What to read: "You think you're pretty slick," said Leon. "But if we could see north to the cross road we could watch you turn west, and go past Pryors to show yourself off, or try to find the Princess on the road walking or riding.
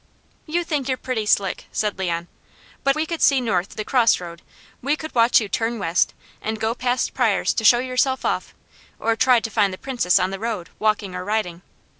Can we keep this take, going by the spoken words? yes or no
no